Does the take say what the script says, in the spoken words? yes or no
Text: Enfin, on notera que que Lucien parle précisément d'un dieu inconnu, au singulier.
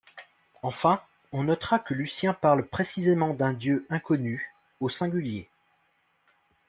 no